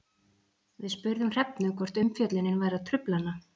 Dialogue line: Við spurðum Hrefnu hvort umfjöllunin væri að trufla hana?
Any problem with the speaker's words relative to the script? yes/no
no